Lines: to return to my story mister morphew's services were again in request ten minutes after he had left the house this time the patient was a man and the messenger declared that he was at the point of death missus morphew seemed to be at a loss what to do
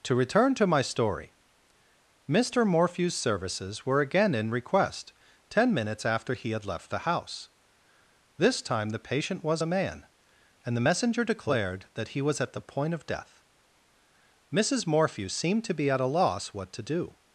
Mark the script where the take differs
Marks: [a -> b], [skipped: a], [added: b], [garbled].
to return to my story mister morphew's services were again in request ten minutes after he had left the house this time the patient was a man and the messenger declared that he was at the point of death missus morphew seemed to be at a loss what to do